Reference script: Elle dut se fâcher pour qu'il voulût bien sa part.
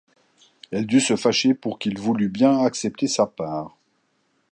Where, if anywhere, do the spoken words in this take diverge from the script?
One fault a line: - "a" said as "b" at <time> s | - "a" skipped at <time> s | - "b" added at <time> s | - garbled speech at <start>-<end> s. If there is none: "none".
- "accepter" added at 2.6 s